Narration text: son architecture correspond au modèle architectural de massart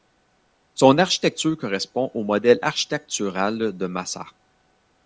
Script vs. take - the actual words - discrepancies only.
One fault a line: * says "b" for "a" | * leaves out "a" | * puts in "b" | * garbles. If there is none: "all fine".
all fine